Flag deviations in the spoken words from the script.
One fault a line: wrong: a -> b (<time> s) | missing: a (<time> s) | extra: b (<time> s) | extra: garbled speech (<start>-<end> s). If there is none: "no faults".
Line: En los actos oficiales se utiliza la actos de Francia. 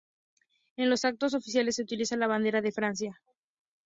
wrong: actos -> bandera (2.2 s)